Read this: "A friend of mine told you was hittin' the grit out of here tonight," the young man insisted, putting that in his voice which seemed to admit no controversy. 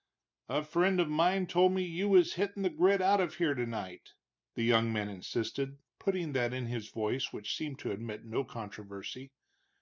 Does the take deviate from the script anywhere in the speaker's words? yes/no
yes